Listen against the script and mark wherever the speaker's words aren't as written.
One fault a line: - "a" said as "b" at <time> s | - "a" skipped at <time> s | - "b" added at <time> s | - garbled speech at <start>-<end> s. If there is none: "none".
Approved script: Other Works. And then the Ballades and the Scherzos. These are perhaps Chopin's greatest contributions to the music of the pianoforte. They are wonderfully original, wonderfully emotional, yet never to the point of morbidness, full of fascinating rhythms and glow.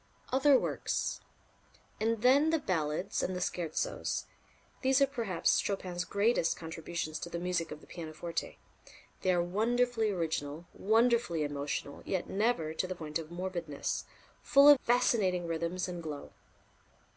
none